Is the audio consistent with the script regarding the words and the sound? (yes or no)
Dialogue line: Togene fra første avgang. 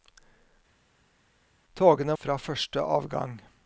yes